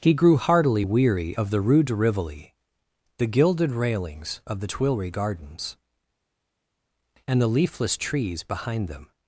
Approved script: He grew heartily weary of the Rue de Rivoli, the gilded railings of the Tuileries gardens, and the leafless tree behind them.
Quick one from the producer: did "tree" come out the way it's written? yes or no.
no